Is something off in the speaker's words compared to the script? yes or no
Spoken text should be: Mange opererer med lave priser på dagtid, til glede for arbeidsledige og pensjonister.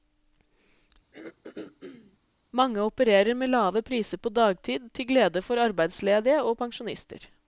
no